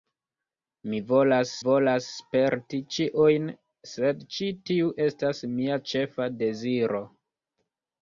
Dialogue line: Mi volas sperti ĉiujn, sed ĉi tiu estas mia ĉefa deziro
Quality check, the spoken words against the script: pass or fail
fail